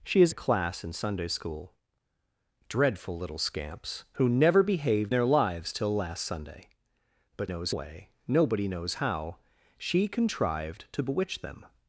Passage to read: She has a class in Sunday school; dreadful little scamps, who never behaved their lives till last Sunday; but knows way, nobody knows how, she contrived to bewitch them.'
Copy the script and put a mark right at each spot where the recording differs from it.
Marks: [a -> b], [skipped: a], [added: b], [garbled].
She has a class in Sunday school; dreadful little scamps, who never behaved their lives till last Sunday; but knows way, nobody knows how, she contrived to bewitch them.'